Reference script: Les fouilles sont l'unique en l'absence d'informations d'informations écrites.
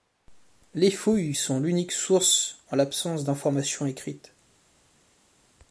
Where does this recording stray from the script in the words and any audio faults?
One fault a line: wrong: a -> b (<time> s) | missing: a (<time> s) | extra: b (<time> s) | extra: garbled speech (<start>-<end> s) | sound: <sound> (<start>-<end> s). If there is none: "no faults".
extra: source (1.9 s)
missing: d'informations (3.8 s)